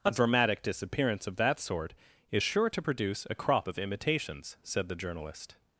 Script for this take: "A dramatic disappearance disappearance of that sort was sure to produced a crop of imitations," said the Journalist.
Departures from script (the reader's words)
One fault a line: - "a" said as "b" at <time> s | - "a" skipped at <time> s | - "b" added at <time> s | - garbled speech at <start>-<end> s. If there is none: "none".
- "disappearance" skipped at 1.3 s
- "was" said as "is" at 2.3 s
- "produced" said as "produce" at 2.8 s